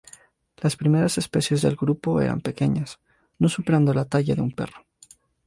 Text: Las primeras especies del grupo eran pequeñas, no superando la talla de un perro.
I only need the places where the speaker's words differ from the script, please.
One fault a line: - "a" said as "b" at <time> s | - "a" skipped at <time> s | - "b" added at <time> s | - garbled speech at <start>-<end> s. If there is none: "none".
none